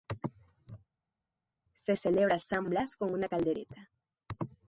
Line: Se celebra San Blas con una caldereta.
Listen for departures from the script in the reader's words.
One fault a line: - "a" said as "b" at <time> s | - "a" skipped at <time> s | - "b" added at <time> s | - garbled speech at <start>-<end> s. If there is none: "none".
none